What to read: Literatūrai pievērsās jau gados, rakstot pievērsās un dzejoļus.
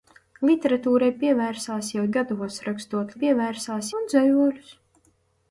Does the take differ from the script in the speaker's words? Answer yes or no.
no